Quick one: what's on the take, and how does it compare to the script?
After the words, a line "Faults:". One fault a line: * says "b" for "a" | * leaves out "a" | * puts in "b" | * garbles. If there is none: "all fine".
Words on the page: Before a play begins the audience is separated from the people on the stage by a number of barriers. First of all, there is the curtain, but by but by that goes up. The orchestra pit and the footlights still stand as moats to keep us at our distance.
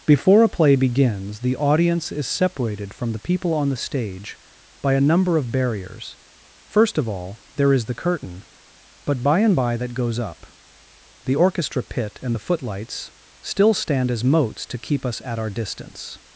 Before a play begins the audience is separated from the people on the stage by a number of barriers. First of all, there is the curtain, but by and by that goes up. The orchestra pit and the footlights still stand as moats to keep us at our distance.
Faults:
* says "and" for "but"